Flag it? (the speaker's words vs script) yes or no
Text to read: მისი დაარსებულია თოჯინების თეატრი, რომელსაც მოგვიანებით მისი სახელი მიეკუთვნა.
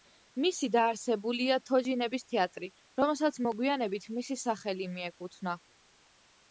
no